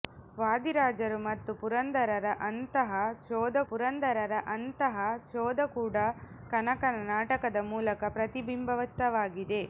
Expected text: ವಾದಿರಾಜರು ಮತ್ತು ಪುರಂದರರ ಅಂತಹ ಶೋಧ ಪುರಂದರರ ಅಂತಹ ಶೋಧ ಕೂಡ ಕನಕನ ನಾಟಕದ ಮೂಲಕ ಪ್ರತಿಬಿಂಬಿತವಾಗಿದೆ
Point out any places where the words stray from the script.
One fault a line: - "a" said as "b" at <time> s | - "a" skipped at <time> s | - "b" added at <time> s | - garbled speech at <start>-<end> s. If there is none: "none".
none